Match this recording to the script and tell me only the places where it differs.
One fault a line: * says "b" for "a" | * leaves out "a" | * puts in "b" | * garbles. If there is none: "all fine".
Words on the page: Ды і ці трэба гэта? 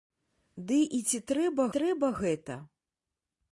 * puts in "трэба"